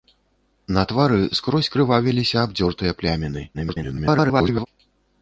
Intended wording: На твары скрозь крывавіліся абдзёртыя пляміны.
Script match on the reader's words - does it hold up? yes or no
no